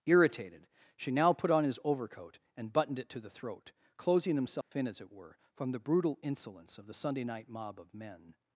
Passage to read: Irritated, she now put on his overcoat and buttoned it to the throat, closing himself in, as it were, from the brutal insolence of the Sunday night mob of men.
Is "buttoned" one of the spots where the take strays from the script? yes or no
no